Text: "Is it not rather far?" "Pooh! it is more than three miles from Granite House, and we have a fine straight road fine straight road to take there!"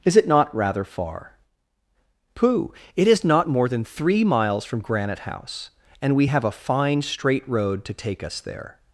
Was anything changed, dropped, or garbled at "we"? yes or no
no